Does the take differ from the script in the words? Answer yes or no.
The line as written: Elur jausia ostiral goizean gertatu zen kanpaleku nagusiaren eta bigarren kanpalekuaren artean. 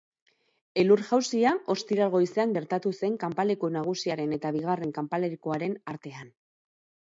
no